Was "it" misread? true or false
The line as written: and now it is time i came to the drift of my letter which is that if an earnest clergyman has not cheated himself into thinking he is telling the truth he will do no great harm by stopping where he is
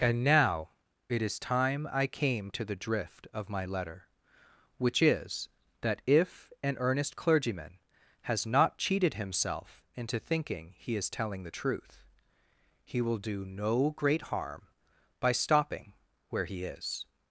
false